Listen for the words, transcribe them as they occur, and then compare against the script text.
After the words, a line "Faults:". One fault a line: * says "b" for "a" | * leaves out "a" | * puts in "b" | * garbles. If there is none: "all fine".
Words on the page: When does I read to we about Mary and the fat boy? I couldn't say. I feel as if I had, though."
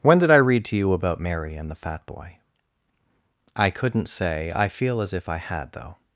When did I read to you about Mary and the fat boy? I couldn't say. I feel as if I had, though."
Faults:
* says "did" for "does"
* says "you" for "we"